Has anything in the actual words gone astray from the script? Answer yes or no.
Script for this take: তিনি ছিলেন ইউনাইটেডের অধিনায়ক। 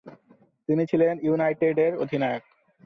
no